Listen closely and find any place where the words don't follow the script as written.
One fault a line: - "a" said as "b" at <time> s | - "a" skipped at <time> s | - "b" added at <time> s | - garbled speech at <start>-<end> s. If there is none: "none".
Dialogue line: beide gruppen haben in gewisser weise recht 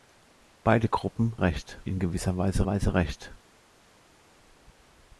- "haben" said as "recht" at 1.4 s
- "weise" added at 2.6 s